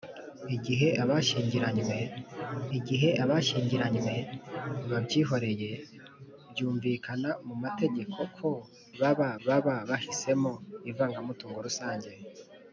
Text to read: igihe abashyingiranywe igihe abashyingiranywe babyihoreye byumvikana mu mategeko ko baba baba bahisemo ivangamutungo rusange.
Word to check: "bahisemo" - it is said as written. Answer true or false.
true